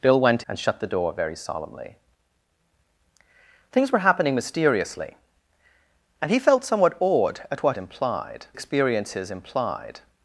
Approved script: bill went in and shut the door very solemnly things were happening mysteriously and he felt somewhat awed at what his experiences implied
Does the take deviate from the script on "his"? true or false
true